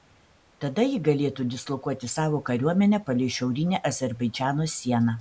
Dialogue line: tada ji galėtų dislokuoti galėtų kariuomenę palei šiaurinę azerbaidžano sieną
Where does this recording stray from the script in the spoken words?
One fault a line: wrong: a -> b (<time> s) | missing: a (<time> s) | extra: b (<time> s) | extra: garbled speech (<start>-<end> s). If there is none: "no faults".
wrong: galėtų -> savo (2.1 s)